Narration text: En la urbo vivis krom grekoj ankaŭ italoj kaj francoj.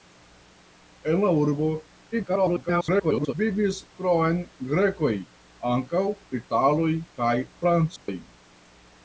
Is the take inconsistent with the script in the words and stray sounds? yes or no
yes